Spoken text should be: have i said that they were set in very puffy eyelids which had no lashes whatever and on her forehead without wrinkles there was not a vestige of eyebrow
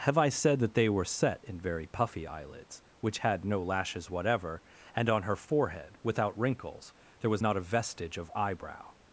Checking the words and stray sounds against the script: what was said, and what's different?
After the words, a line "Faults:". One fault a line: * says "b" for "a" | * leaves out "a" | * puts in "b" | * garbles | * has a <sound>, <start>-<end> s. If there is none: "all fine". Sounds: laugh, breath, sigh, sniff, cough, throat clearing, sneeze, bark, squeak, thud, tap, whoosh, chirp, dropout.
have i said that they were set in very puffy eyelids which had no lashes whatever and on her forehead without wrinkles there was not a vestige of eyebrow
Faults:
all fine